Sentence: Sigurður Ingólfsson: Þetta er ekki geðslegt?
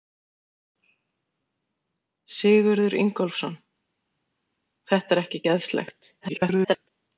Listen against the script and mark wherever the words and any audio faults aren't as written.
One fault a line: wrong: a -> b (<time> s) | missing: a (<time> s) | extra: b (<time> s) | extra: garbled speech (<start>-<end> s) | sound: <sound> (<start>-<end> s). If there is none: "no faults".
extra: garbled speech (6.2-6.9 s)